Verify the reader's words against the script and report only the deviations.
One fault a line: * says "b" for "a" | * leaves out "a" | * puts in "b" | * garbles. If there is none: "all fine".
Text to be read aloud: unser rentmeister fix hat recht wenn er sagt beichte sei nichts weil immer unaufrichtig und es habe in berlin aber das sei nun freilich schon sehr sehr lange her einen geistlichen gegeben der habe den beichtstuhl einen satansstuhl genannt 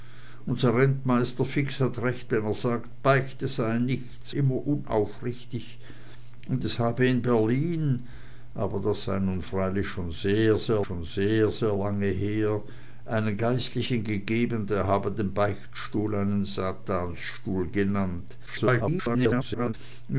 * leaves out "weil"
* puts in "schon sehr sehr"
* garbles